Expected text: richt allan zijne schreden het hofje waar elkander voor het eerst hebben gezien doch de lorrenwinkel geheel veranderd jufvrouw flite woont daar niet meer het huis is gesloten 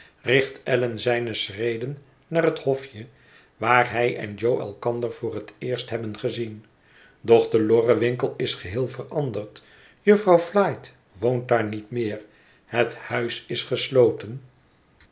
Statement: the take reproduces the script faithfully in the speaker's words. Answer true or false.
false